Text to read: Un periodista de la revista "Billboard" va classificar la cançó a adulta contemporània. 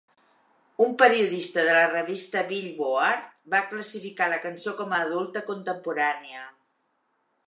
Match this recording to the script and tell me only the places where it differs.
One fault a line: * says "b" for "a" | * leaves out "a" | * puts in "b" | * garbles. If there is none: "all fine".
* puts in "com"